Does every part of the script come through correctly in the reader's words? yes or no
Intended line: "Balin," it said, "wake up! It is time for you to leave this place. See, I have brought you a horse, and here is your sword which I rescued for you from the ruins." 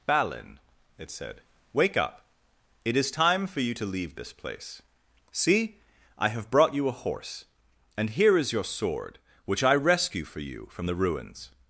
no